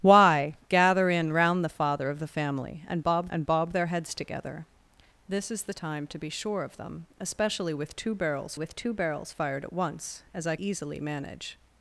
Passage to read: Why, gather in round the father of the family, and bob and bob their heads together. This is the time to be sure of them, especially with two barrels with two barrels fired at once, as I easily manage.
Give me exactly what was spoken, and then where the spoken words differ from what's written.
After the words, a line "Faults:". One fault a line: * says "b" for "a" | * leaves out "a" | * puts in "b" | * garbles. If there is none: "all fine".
Why, gather in round the father of the family, and bob and bob their heads together. This is the time to be sure of them, especially with two barrels with two barrels fired at once, as I easily manage.
Faults:
all fine